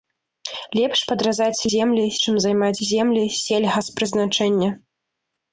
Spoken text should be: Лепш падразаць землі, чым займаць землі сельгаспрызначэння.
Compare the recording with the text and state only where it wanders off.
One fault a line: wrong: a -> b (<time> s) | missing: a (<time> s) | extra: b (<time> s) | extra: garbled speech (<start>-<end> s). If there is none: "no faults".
no faults